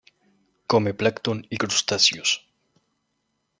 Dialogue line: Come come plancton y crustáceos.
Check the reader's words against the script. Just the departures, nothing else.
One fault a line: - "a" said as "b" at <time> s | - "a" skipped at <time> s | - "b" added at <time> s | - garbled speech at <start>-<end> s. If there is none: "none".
- "come" skipped at 0.9 s